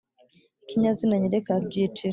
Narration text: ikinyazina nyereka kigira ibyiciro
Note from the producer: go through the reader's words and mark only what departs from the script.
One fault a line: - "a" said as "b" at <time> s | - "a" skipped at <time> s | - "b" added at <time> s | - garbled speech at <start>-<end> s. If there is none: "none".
- "kigira" skipped at 1.5 s